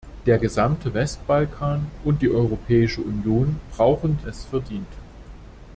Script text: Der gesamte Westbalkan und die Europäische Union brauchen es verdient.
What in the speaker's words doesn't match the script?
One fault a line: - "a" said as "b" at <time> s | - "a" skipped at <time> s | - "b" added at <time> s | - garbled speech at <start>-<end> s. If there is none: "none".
none